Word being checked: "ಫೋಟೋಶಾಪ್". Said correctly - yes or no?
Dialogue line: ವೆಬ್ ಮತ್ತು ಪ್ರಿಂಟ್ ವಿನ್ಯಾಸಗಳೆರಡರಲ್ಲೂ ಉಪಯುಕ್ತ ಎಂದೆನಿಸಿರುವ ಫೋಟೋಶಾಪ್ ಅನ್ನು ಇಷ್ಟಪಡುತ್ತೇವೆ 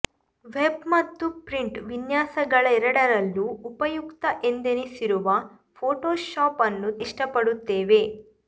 yes